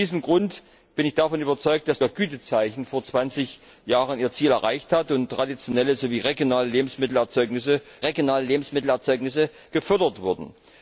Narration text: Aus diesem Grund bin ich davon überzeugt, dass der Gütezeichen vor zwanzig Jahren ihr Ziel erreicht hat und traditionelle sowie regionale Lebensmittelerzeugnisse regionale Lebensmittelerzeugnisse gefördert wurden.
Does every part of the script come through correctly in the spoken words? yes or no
yes